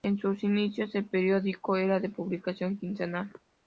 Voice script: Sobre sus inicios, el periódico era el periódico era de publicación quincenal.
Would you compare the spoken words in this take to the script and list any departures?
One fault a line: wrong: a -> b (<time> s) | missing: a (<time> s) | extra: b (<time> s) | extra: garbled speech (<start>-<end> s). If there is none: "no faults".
wrong: Sobre -> En (0.0 s)
missing: el periódico era (2.0 s)